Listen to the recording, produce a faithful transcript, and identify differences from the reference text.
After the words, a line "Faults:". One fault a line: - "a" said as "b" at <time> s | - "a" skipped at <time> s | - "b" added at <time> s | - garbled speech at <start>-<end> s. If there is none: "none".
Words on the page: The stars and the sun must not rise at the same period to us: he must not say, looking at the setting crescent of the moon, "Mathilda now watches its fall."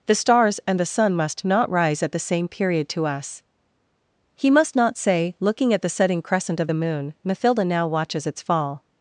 The stars and the sun must not rise at the same period to us: he must not say, looking at the setting crescent of the moon, "Mathilda now watches its fall."
Faults:
none